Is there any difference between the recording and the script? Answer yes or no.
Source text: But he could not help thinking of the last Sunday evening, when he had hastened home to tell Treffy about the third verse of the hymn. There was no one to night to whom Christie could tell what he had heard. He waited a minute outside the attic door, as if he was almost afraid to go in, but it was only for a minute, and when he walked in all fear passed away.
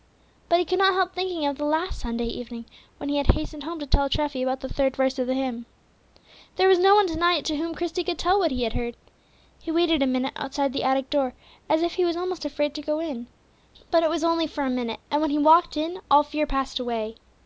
no